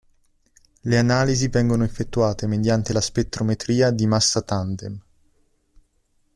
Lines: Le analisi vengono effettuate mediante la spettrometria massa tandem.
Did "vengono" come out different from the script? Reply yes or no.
no